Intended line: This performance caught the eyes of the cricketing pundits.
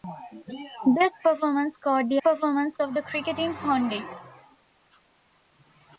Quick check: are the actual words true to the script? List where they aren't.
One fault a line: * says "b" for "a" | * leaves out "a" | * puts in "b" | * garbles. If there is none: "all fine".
* says "performance" for "eyes"